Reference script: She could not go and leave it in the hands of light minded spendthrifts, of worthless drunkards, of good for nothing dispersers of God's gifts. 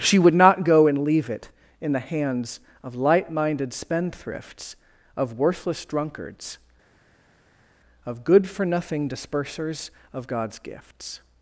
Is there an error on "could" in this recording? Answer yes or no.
yes